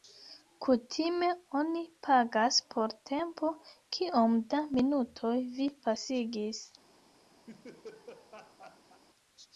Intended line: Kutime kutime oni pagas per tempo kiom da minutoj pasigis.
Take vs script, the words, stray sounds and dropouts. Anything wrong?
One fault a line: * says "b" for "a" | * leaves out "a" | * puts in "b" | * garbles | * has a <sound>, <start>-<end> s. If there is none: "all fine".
* leaves out "kutime"
* says "por" for "per"
* puts in "vi"
* has a laugh, 7.5-9.0 s